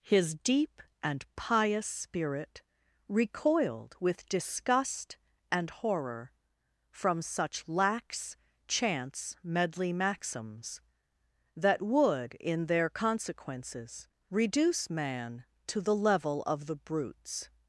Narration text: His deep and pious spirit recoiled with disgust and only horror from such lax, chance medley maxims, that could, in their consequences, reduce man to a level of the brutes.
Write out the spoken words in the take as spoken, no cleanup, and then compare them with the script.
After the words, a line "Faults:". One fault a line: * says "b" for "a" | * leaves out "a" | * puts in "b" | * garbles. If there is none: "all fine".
His deep and pious spirit recoiled with disgust and horror from such lax, chance medley maxims, that would, in their consequences, reduce man to the level of the brutes.
Faults:
* leaves out "only"
* says "would" for "could"
* says "the" for "a"